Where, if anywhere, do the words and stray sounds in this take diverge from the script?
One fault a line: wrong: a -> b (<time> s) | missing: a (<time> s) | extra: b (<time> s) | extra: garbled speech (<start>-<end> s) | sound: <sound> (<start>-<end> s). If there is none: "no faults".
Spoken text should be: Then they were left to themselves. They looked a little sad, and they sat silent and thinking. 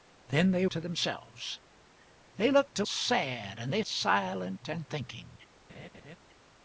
missing: were left (0.7 s)
missing: little (2.8 s)
missing: sat (3.8 s)
sound: laugh (5.7-6.2 s)